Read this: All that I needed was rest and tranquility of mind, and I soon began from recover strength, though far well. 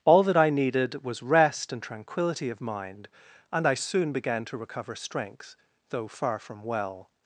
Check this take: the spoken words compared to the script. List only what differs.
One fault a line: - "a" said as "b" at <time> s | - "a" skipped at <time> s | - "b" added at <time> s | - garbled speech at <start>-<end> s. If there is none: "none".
- "from" said as "to" at 4.5 s
- "from" added at 6.4 s